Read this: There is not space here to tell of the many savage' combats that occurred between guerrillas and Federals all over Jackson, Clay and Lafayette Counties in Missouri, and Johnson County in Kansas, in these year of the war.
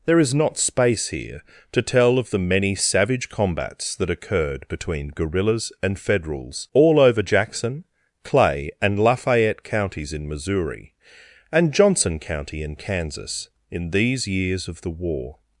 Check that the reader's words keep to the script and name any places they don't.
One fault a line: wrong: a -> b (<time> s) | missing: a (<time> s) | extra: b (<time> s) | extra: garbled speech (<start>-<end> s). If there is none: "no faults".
wrong: year -> years (14.3 s)